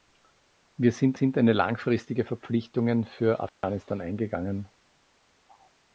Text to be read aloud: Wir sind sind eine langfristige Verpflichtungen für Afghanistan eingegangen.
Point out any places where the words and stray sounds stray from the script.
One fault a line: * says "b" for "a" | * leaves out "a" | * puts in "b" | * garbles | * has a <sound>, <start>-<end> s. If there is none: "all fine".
* has a dropout, 3.5-3.6 s